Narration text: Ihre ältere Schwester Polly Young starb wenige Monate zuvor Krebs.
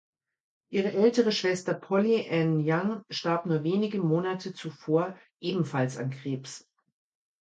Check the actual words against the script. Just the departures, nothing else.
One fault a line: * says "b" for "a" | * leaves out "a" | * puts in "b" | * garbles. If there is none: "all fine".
* puts in "Ann"
* puts in "nur"
* puts in "ebenfalls an"